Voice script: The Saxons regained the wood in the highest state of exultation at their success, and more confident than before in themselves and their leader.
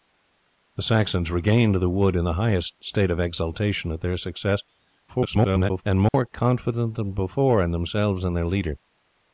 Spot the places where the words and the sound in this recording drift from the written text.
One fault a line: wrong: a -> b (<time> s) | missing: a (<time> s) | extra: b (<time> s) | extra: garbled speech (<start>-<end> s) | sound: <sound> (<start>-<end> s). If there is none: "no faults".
extra: garbled speech (5.1-5.8 s)
sound: dropout (6.1-6.1 s)